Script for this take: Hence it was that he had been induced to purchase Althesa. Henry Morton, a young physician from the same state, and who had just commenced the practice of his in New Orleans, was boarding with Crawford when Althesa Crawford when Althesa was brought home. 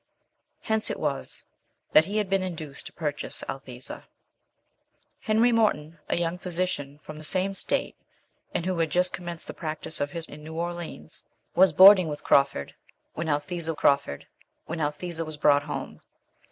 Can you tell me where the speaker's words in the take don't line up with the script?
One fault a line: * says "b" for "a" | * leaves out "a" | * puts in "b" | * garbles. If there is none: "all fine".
all fine